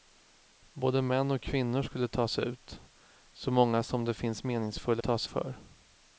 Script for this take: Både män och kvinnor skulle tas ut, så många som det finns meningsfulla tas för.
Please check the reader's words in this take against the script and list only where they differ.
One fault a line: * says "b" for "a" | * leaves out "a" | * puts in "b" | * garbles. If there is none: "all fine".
all fine